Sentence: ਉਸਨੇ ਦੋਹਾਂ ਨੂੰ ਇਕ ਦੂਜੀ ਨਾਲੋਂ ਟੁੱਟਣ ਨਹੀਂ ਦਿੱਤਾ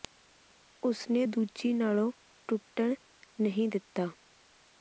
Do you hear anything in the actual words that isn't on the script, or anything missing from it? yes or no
yes